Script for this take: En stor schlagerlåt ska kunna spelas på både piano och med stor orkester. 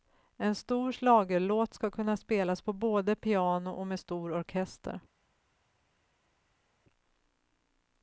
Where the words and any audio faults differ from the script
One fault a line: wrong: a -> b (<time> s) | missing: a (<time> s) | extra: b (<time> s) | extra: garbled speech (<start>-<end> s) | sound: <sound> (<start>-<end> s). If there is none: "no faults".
no faults